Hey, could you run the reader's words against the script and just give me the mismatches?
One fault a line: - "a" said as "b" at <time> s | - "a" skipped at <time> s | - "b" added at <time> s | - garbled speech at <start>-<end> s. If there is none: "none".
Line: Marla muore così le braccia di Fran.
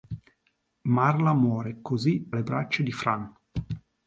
none